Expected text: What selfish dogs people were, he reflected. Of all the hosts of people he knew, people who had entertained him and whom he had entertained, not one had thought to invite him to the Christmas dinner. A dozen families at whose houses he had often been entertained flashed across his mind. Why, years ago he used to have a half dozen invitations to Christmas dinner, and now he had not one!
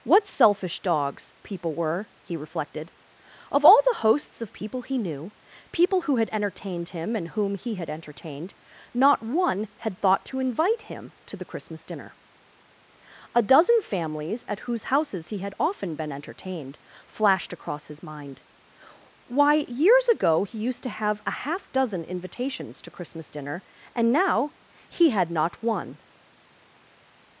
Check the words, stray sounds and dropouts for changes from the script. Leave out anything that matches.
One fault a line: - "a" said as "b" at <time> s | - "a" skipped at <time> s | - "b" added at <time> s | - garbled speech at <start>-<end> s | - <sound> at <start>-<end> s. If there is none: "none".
none